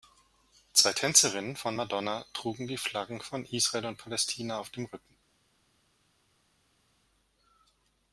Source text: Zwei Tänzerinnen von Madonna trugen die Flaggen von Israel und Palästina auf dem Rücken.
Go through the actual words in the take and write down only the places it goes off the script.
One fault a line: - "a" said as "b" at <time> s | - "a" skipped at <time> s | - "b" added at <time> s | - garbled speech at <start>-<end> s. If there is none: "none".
none